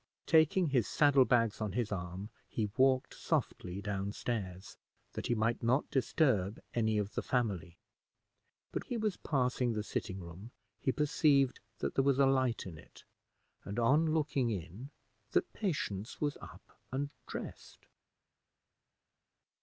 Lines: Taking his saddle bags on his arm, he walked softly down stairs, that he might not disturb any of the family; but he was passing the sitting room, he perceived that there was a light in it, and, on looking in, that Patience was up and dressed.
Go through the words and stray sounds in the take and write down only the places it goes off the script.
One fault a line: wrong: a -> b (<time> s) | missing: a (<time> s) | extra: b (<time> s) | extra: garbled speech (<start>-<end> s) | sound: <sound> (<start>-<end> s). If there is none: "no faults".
no faults